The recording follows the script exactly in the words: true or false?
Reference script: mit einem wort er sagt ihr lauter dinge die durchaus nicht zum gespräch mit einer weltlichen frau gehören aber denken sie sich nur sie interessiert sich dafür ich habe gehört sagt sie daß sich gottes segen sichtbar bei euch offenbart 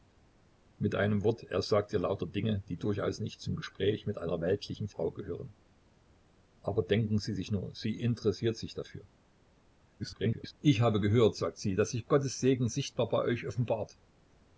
false